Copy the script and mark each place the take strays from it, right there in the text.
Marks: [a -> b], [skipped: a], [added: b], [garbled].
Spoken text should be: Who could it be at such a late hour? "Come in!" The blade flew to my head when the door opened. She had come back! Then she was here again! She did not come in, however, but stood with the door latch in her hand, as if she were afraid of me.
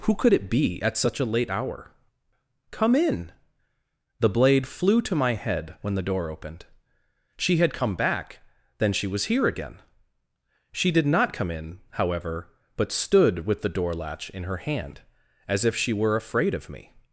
Who could it be at such a late hour? "Come in!" The blade flew to my head when the door opened. She had come back! Then she was here again! She did not come in, however, but stood with the door latch in her hand, as if she were afraid of me.